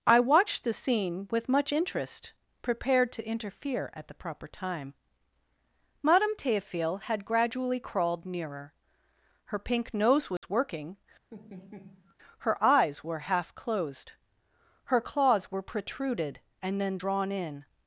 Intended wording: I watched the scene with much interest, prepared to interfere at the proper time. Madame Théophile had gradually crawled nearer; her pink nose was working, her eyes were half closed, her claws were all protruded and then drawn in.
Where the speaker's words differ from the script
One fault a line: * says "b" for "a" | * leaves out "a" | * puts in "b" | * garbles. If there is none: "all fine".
* leaves out "all"